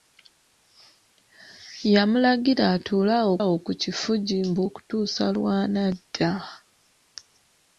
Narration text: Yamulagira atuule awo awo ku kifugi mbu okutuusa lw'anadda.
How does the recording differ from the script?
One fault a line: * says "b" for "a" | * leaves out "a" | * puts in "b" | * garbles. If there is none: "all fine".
all fine